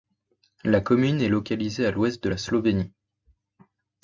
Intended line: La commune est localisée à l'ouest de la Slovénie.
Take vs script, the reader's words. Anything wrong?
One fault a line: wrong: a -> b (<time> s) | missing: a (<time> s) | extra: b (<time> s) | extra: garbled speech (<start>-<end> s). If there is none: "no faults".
no faults